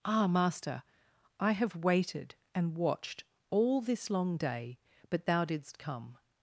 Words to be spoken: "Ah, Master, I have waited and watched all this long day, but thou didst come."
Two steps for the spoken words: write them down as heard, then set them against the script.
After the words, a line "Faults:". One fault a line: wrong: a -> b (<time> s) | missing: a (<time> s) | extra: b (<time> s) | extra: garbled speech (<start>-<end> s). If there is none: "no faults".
"Ah, Master, I have waited and watched all this long day, but thou didst come."
Faults:
no faults